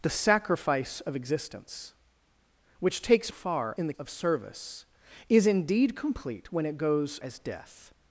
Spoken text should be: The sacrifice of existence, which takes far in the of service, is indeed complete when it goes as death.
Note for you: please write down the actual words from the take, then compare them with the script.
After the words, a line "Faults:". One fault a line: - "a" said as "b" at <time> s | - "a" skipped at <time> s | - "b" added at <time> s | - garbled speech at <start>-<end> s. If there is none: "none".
The sacrifice of existence, which takes far in the of service, is indeed complete when it goes as death.
Faults:
none